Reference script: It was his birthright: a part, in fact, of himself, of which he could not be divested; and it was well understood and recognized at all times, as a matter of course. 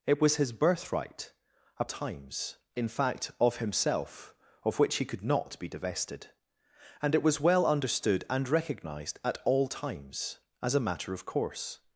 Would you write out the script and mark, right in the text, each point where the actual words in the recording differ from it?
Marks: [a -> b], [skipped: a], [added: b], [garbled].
It was his birthright: a [part, -> times] in fact, of himself, of which he could not be divested; and it was well understood and recognized at all times, as a matter of course.